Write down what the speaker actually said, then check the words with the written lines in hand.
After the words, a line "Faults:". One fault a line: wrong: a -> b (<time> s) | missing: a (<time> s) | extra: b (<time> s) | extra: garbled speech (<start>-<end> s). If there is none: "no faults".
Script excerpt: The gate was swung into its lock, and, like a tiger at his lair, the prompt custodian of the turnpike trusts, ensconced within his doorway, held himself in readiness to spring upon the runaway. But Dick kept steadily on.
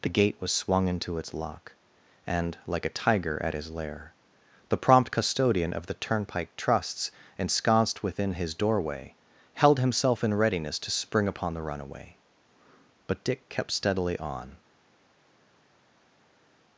The gate was swung into its lock, and, like a tiger at his lair, the prompt custodian of the turnpike trusts, ensconced within his doorway, held himself in readiness to spring upon the runaway. But Dick kept steadily on.
Faults:
no faults